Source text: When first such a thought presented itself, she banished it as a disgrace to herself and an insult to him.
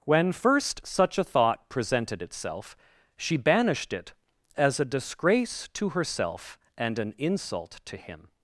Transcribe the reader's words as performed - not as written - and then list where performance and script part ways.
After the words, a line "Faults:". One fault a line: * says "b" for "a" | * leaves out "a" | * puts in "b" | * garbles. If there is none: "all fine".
When first such a thought presented itself, she banished it as a disgrace to herself and an insult to him.
Faults:
all fine